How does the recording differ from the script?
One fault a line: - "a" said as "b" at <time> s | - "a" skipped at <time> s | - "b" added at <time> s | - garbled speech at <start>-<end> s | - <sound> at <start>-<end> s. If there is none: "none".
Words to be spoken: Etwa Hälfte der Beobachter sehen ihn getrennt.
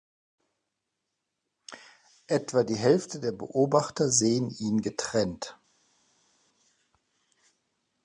- "die" added at 2.6 s